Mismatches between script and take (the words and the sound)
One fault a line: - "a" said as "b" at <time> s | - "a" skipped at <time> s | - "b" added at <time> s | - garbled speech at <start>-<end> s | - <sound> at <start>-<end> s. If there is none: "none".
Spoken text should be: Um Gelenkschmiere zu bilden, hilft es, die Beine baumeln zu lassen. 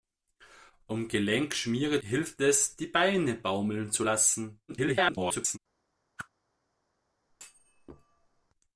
- "zu bilden" skipped at 2.0 s
- garbled speech at 4.7-5.6 s
- whoosh at 6.2-6.3 s
- thud at 7.3-8.5 s